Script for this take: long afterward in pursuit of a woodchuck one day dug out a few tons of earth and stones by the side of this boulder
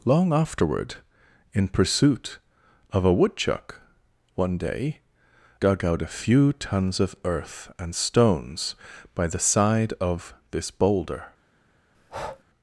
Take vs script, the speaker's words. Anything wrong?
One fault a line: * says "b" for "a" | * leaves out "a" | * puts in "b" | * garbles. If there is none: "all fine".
all fine